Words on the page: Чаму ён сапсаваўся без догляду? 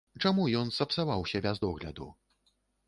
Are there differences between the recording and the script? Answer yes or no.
no